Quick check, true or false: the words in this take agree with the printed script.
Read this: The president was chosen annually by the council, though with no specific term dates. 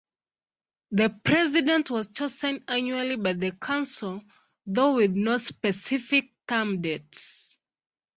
true